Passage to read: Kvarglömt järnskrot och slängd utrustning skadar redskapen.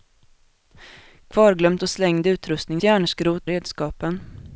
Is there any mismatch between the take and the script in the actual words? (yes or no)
yes